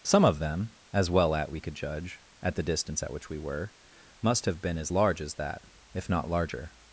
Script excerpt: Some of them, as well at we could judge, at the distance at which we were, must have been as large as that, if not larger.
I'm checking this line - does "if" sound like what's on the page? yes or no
yes